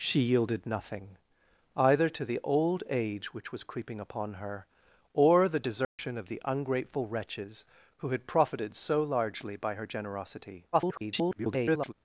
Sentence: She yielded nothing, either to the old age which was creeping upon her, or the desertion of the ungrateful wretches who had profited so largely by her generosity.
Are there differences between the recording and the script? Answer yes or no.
yes